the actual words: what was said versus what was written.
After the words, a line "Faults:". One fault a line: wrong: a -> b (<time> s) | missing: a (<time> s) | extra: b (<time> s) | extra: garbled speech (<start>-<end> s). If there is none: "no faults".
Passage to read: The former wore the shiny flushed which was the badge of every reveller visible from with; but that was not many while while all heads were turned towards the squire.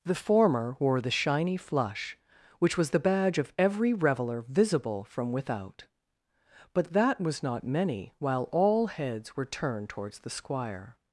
The former wore the shiny flush which was the badge of every reveller visible from without; but that was not many while all heads were turned towards the squire.
Faults:
wrong: flushed -> flush (1.6 s)
wrong: with -> without (5.3 s)
missing: while (8.5 s)